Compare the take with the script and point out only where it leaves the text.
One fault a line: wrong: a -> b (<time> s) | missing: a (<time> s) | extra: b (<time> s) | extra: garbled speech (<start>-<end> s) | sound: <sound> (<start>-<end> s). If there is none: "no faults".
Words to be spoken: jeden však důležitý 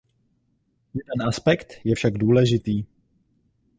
extra: aspekt je (1.3 s)